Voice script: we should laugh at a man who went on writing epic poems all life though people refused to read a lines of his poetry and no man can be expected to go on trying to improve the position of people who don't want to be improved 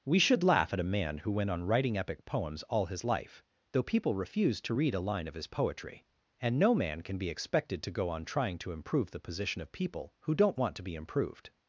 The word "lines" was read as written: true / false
false